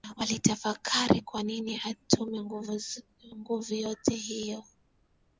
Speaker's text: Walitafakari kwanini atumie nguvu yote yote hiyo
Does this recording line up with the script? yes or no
no